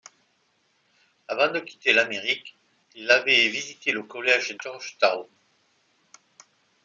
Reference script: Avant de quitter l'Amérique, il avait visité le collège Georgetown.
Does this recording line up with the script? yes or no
yes